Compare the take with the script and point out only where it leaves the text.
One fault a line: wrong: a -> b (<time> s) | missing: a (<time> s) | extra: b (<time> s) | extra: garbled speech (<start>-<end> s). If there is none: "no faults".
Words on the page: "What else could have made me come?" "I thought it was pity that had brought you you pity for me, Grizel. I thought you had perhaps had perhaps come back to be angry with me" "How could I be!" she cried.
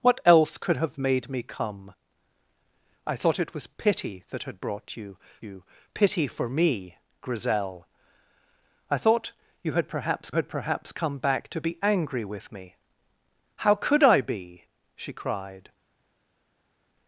no faults